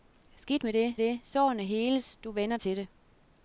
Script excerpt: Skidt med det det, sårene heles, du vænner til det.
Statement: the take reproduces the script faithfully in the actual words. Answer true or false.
true